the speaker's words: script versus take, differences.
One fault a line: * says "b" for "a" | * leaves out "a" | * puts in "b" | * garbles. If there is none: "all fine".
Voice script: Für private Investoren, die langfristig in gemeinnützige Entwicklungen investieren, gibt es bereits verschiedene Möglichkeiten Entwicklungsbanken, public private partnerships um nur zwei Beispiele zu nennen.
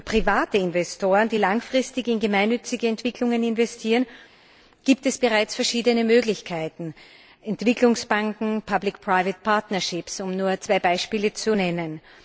all fine